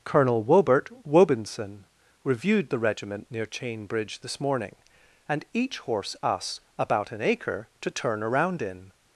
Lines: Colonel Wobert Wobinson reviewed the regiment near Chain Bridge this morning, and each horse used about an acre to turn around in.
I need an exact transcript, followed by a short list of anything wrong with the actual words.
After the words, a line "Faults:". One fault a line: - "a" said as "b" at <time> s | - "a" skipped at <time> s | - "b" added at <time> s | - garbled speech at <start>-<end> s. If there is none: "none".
Colonel Wobert Wobinson reviewed the regiment near Chain Bridge this morning, and each horse us about an acre to turn around in.
Faults:
- "used" said as "us" at 6.2 s